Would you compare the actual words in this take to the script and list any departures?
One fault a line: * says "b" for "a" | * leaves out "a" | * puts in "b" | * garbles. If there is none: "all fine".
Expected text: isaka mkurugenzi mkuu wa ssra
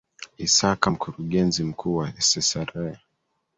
all fine